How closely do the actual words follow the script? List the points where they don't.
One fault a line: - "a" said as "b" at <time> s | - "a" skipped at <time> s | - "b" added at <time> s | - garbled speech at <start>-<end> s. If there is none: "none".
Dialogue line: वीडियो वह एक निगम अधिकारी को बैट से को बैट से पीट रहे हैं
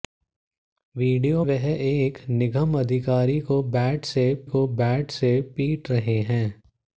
none